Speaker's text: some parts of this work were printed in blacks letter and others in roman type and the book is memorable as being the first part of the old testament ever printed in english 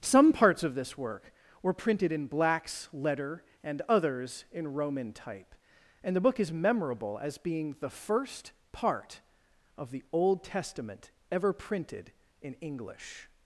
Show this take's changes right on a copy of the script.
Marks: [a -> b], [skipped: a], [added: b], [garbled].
some parts of this work were printed in blacks letter and others in roman type and the book is memorable as being the first part of the old testament ever printed in english